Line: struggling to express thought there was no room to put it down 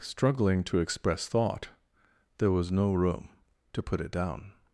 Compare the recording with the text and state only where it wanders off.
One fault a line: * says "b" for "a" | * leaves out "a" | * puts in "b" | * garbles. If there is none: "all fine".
all fine